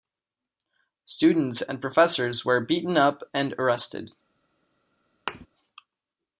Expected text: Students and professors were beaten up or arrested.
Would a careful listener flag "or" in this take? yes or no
yes